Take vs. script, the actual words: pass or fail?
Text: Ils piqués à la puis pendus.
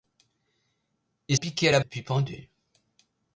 pass